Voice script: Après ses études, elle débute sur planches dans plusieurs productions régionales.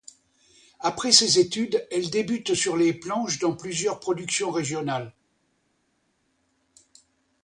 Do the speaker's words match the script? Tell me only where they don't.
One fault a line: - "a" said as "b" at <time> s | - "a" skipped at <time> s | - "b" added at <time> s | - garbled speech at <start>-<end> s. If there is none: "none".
- "les" added at 2.8 s